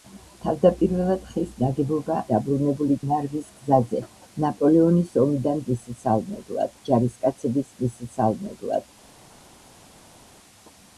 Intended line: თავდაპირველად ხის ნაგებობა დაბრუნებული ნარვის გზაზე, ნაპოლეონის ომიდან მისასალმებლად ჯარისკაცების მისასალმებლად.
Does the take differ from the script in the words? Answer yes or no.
no